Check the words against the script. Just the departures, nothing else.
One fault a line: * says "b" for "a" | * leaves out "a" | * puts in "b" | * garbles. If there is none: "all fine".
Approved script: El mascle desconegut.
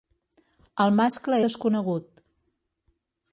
all fine